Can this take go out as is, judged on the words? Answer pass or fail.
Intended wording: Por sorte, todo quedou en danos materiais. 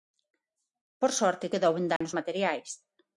fail